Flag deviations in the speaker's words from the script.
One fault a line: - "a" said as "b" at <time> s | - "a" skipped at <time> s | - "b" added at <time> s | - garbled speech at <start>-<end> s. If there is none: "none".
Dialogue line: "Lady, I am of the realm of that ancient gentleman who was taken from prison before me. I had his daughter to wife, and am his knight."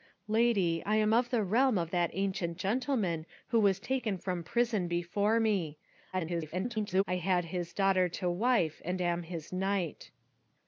- garbled speech at 6.1-7.0 s